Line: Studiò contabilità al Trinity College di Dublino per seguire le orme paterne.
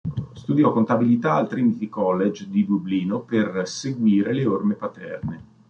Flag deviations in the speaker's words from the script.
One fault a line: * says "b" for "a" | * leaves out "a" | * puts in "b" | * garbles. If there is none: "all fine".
all fine